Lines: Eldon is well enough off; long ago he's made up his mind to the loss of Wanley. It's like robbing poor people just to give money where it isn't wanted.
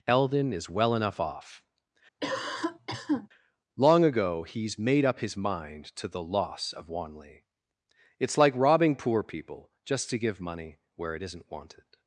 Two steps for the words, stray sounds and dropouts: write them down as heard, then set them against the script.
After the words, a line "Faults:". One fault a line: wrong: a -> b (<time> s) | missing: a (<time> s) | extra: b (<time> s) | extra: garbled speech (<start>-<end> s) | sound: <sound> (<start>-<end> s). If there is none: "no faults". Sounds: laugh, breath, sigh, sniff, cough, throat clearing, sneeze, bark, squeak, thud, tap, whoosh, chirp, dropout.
Eldon is well enough off; long ago he's made up his mind to the loss of Wanley. It's like robbing poor people just to give money where it isn't wanted.
Faults:
sound: cough (2.2-3.3 s)